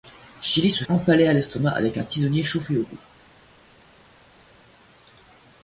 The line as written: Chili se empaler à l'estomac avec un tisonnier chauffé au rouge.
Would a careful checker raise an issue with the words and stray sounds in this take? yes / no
no